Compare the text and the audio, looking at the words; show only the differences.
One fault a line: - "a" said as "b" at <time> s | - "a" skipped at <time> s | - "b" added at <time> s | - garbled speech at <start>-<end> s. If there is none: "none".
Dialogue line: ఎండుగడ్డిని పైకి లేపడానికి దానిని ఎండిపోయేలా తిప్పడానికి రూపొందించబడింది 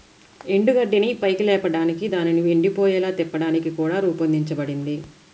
- "కూడా" added at 3.7 s